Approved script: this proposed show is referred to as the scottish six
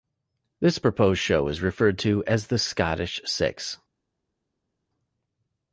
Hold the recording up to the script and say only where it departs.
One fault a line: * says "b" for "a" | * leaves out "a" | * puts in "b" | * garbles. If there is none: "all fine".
all fine